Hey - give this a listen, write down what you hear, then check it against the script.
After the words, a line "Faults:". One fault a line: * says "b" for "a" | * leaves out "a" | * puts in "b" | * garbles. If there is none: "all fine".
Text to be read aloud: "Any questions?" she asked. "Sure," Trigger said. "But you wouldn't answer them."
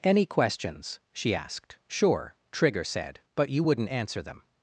"Any questions?" she asked. "Sure," Trigger said. "But you wouldn't answer them."
Faults:
all fine